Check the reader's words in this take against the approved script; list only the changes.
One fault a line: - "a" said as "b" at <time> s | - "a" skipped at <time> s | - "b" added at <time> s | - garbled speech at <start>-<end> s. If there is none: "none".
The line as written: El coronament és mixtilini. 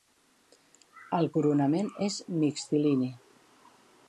none